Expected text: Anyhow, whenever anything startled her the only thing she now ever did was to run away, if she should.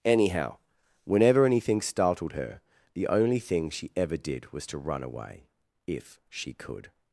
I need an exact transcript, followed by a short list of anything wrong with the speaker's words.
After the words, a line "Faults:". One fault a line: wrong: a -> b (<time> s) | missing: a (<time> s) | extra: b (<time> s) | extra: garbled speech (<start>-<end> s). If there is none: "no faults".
Anyhow, whenever anything startled her the only thing she ever did was to run away, if she could.
Faults:
missing: now (3.9 s)
wrong: should -> could (6.5 s)